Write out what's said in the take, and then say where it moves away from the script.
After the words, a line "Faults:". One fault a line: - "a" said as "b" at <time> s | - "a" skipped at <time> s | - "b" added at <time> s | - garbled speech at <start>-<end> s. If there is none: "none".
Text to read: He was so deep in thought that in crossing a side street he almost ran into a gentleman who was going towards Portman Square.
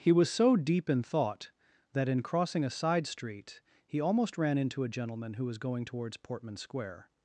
He was so deep in thought that in crossing a side street he almost ran into a gentleman who was going towards Portman Square.
Faults:
none